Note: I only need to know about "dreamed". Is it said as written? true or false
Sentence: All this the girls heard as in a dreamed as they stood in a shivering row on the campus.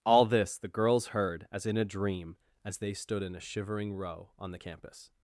false